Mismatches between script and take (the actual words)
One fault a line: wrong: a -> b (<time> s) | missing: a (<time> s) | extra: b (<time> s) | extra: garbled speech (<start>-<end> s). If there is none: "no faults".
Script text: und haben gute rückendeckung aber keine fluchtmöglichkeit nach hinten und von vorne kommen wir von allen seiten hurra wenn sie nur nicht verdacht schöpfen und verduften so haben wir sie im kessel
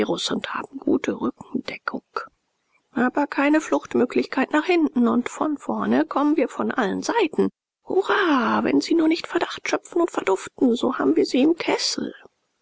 no faults